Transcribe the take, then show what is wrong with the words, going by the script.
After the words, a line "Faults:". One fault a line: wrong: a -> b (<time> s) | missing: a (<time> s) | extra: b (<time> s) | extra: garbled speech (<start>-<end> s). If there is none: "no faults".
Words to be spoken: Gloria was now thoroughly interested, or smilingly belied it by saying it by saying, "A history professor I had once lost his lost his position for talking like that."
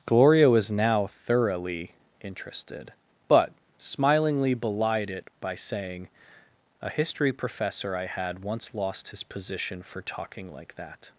Gloria was now thoroughly interested, but smilingly belied it by saying, "A history professor I had once lost his position for talking like that."
Faults:
wrong: or -> but (3.3 s)
missing: it by saying (6.1 s)
missing: lost his (9.2 s)